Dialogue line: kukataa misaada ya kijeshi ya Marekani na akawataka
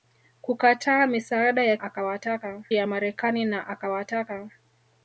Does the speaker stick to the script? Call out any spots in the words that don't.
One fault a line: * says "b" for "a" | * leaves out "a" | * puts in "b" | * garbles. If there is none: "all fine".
* says "akawataka" for "kijeshi"